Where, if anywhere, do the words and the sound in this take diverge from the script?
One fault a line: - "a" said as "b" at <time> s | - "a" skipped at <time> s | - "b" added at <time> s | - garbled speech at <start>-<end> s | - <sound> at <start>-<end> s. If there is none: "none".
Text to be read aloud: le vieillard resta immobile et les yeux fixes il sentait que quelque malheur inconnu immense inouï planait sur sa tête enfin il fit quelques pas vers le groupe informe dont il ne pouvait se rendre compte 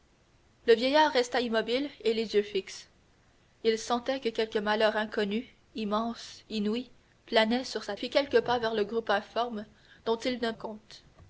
- "tête enfin il" skipped at 8.0 s
- "pouvait se rendre" skipped at 10.5 s